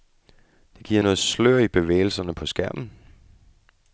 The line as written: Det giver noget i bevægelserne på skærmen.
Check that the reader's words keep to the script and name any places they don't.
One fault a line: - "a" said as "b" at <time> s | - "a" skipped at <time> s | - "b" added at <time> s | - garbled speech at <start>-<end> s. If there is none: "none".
- "slør" added at 1.2 s